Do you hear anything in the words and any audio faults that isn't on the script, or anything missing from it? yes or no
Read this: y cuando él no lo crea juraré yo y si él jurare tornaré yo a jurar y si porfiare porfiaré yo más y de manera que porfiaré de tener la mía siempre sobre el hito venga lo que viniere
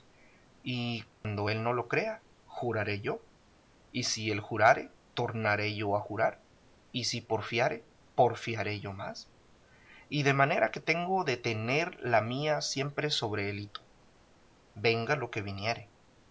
yes